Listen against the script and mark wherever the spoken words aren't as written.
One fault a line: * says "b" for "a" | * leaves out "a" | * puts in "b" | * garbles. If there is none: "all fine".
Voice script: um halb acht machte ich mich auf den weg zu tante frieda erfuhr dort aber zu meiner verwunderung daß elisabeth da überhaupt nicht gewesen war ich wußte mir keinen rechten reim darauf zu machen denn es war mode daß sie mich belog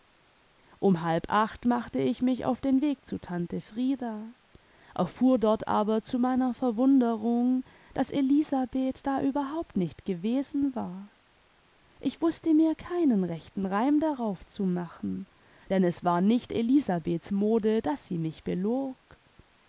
* puts in "nicht elisabeths"